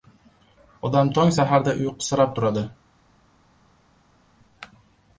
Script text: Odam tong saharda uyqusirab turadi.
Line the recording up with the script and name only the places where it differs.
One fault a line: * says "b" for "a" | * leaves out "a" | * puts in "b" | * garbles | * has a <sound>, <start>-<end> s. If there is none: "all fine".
all fine